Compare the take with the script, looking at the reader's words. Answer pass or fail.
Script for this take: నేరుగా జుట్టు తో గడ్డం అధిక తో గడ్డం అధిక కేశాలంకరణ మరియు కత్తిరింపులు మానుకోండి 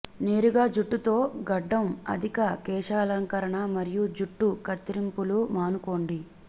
fail